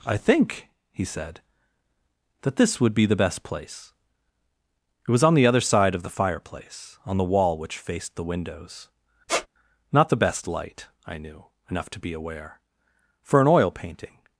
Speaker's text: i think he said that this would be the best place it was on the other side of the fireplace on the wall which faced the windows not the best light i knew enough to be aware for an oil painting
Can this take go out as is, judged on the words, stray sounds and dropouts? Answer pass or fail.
fail